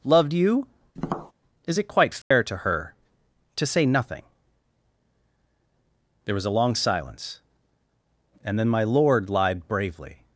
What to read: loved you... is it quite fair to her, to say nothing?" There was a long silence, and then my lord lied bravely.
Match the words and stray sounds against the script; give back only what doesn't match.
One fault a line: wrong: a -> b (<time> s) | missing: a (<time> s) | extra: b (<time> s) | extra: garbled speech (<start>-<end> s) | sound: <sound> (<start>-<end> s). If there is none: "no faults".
sound: tap (1.0-1.3 s)
sound: dropout (2.2-2.3 s)